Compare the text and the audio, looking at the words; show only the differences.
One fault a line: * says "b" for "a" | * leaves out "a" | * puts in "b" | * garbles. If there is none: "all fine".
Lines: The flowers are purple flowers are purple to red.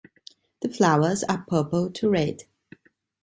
* leaves out "flowers are purple"